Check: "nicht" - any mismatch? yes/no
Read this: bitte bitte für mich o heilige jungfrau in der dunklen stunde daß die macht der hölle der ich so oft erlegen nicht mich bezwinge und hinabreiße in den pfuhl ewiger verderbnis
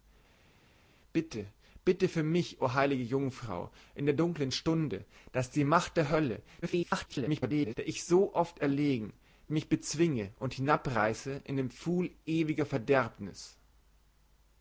yes